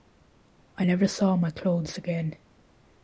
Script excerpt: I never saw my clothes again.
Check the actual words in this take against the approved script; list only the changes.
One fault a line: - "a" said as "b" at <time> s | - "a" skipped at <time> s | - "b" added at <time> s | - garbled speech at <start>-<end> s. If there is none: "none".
none